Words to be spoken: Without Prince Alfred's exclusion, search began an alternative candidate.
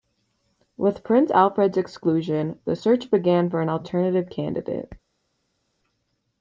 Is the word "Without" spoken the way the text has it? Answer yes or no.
no